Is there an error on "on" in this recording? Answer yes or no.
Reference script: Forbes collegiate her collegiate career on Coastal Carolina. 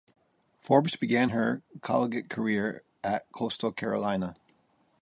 yes